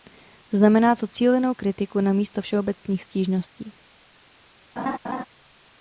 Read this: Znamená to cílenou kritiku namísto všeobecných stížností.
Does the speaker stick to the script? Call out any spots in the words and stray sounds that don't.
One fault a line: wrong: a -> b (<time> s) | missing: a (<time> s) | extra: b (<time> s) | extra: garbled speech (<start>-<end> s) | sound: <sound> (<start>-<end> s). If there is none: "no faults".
sound: laugh (4.8-5.2 s)